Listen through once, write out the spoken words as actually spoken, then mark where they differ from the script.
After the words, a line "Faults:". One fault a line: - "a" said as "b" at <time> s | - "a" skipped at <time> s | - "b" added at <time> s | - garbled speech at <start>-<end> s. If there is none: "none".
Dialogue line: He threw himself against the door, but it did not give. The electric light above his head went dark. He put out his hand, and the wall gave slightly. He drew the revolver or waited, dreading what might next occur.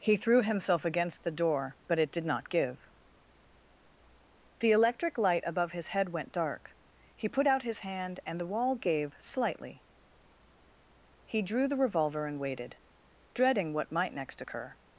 He threw himself against the door, but it did not give. The electric light above his head went dark. He put out his hand, and the wall gave slightly. He drew the revolver and waited, dreading what might next occur.
Faults:
- "or" said as "and" at 12.2 s